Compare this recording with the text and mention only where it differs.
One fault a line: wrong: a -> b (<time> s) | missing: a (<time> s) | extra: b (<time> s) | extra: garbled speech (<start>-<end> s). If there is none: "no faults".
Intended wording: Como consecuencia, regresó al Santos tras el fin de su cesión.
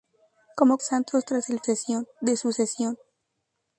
missing: consecuencia regresó al (0.8 s)
wrong: fin -> cesión (1.6 s)